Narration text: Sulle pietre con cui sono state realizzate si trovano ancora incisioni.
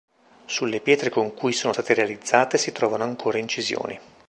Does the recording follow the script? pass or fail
pass